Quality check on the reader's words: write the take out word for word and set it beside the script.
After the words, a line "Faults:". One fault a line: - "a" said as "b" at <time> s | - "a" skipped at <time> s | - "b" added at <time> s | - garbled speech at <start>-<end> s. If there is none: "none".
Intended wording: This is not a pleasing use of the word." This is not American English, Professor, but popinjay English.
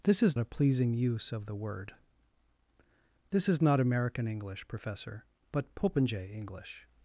This is a pleasing use of the word." This is not American English, Professor, but popinjay English.
Faults:
- "not" skipped at 0.4 s